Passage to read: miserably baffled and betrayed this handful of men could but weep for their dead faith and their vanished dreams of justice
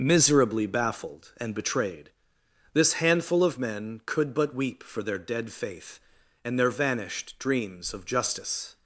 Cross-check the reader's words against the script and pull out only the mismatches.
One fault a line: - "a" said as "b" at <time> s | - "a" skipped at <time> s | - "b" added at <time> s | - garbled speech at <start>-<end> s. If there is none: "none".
none